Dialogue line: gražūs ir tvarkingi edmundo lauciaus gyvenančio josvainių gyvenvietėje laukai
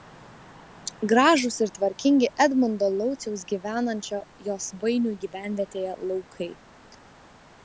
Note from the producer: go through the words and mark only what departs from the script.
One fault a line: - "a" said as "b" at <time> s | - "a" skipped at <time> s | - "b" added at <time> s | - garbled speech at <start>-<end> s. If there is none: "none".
none